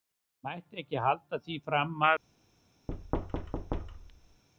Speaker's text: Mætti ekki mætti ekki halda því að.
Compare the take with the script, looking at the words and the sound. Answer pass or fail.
fail